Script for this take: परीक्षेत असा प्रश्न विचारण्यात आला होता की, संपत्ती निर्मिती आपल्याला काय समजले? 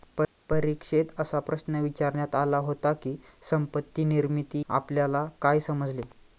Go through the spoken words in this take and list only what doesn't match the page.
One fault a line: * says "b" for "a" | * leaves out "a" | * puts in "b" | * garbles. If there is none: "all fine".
all fine